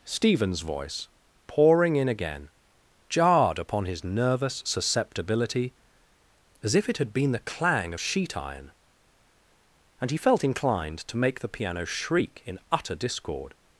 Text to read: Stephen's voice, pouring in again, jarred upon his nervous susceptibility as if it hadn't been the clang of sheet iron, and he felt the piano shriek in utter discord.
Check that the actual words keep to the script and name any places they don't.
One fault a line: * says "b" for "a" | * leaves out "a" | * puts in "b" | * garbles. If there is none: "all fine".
* says "had" for "hadn't"
* puts in "inclined to make"